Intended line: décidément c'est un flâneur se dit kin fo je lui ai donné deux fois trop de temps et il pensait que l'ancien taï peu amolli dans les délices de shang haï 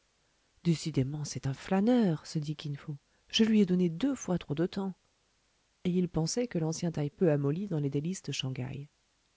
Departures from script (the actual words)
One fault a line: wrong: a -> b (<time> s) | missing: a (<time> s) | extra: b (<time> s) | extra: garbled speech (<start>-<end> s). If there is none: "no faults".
no faults